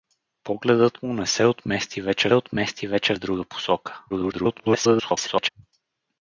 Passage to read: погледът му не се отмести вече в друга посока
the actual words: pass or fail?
fail